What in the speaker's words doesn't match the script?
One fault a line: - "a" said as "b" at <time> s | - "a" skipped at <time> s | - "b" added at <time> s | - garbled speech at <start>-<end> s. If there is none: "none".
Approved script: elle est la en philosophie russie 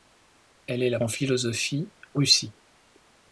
none